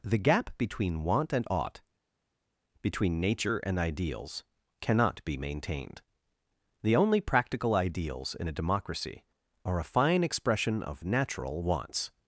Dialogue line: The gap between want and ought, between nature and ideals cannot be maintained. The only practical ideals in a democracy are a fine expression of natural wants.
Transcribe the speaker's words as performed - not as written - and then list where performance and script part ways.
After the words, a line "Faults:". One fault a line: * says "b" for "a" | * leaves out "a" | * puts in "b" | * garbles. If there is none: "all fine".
The gap between want and ought, between nature and ideals cannot be maintained. The only practical ideals in a democracy are a fine expression of natural wants.
Faults:
all fine